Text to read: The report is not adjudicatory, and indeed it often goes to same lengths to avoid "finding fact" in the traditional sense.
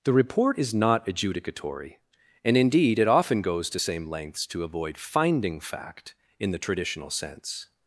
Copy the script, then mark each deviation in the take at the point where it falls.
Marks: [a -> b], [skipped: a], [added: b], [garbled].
The report is not adjudicatory, and indeed it often goes to same lengths to avoid "finding fact" in the traditional sense.